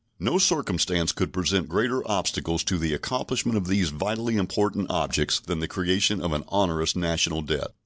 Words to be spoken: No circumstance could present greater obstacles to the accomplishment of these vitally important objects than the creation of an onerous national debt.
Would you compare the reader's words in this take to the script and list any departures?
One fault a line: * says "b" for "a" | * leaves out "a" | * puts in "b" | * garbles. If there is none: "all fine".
all fine